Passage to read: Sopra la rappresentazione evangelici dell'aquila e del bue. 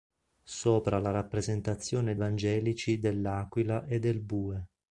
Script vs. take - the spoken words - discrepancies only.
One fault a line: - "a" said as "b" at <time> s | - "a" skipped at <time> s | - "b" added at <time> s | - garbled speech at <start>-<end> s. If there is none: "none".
none